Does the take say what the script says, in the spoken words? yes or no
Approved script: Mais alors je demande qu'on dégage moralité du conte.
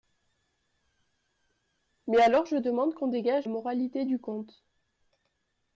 yes